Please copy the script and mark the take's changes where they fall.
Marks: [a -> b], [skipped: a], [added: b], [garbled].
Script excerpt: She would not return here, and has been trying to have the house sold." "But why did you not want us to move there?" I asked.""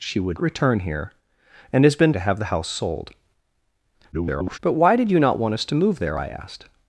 She would [skipped: not] return here, and has been [skipped: trying] to have the house sold." [garbled] "But why did you not want us to move there?" I asked.""